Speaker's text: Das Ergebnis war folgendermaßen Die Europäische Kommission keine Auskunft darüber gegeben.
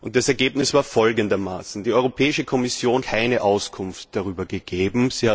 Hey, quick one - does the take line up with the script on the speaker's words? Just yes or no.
yes